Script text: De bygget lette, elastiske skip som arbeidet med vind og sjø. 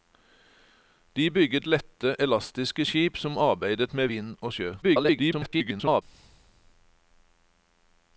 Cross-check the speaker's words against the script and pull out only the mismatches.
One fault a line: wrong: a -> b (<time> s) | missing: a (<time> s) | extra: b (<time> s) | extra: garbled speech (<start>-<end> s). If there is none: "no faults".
extra: garbled speech (4.8-6.0 s)